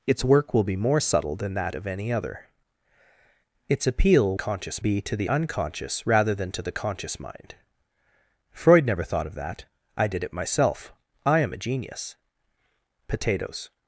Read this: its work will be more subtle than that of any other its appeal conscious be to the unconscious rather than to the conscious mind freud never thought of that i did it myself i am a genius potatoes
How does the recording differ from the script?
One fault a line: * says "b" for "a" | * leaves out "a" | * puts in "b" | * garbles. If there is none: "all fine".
all fine